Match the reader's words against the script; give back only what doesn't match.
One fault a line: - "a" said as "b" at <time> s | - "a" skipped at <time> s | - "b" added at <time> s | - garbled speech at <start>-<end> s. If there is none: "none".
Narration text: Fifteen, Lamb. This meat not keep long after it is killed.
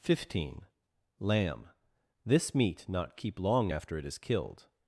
none